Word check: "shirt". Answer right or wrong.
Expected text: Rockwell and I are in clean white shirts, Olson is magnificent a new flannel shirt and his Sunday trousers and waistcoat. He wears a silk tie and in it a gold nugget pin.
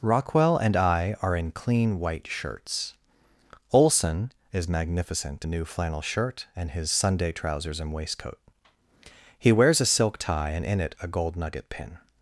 right